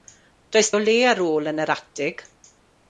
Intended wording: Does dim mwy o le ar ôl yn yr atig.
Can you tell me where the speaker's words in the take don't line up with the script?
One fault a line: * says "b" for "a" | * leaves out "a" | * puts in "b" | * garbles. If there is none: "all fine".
* leaves out "dim mwy"